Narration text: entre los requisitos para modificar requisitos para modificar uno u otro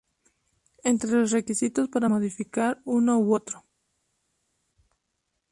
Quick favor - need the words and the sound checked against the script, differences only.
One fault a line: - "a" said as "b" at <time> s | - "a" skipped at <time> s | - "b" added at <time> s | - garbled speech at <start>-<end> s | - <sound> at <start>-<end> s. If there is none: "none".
- "requisitos para modificar" skipped at 2.8 s